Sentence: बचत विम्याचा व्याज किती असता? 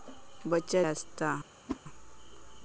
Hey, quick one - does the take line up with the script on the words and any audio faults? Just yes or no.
no